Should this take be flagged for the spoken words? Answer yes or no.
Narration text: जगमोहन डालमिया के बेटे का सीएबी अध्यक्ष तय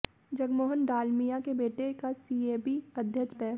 no